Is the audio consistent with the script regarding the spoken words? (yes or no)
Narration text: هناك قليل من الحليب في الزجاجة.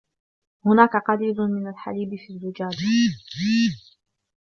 yes